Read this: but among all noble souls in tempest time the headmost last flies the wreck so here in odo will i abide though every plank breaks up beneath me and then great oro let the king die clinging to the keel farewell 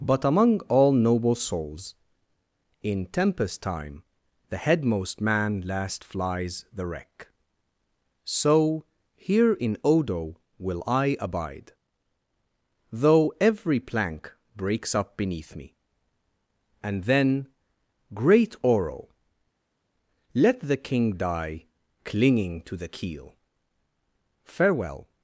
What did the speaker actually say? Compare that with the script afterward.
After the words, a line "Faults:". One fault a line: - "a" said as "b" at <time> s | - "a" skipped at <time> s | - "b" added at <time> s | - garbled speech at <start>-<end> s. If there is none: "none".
but among all noble souls in tempest time the headmost man last flies the wreck so here in odo will i abide though every plank breaks up beneath me and then great oro let the king die clinging to the keel farewell
Faults:
- "man" added at 5.2 s